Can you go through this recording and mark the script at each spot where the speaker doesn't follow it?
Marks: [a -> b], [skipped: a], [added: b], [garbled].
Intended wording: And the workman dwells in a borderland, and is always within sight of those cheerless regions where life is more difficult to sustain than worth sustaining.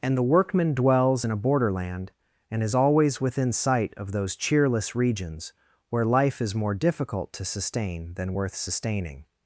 And the workman dwells in a borderland, and is always within sight of those cheerless regions where life is more difficult to sustain than worth sustaining.